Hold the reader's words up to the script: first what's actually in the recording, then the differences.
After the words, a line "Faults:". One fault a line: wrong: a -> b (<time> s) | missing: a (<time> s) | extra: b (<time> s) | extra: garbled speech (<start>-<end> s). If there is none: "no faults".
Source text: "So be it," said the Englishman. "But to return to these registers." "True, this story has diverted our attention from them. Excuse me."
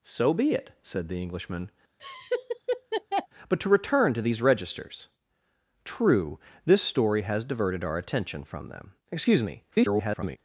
"So be it," said the Englishman. "But to return to these registers." "True, this story has diverted our attention from them. Excuse me." [garbled]
Faults:
extra: garbled speech (9.7-10.4 s)